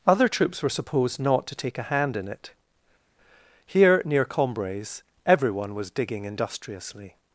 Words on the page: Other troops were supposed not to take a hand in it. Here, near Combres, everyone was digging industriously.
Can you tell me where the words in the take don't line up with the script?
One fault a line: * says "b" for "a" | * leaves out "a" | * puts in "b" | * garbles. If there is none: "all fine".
all fine